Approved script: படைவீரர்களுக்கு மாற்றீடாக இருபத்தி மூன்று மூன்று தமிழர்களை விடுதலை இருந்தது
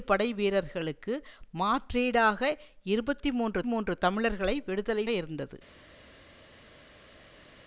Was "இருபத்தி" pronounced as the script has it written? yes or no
yes